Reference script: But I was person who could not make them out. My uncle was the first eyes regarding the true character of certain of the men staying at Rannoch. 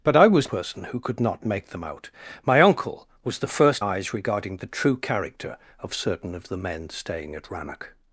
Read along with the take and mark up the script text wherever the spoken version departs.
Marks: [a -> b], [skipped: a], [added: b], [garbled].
But I was person who could not make them out. My uncle was the first eyes regarding the true character of certain of the men staying at Rannoch.